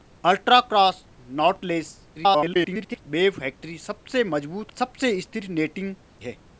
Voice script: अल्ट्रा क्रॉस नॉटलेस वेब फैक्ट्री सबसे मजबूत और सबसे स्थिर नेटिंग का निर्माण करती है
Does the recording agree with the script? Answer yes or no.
no